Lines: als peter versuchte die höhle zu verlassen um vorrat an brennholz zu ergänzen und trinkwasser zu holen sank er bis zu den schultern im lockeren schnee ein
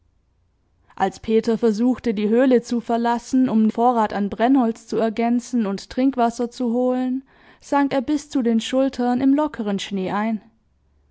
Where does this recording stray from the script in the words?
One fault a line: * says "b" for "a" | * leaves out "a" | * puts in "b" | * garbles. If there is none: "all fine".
all fine